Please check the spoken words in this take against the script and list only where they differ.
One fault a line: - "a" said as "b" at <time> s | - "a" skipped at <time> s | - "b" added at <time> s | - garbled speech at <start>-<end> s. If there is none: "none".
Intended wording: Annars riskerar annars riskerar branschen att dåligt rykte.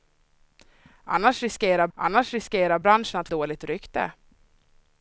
none